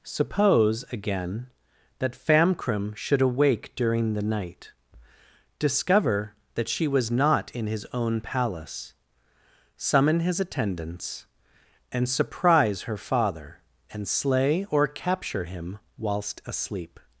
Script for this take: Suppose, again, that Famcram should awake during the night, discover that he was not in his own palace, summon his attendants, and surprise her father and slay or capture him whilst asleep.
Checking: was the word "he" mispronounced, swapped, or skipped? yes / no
yes